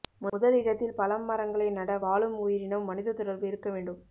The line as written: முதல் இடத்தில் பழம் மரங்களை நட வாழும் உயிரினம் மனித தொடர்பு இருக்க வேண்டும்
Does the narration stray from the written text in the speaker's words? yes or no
no